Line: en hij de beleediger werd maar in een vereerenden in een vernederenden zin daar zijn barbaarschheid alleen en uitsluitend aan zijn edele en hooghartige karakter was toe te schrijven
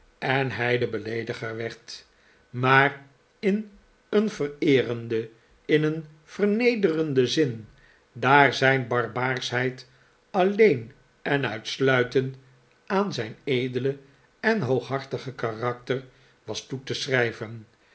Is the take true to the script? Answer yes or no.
yes